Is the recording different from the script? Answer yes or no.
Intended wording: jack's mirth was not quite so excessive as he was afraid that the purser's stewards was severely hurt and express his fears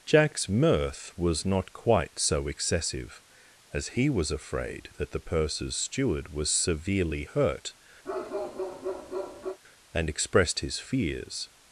yes